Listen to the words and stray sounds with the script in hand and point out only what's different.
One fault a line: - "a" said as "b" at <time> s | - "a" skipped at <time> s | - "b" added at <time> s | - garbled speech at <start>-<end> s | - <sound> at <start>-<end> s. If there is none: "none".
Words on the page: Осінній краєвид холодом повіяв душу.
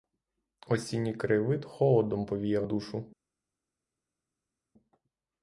none